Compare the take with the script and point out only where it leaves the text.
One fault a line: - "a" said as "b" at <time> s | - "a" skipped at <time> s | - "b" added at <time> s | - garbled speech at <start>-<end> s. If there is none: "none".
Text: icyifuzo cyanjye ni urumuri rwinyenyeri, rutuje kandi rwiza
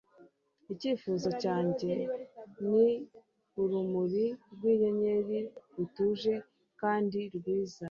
none